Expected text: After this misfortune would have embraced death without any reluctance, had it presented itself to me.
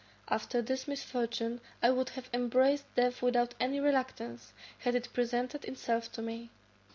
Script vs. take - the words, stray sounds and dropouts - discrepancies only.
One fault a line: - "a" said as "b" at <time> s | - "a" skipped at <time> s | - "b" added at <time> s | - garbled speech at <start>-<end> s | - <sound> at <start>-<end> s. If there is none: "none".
- "I" added at 1.8 s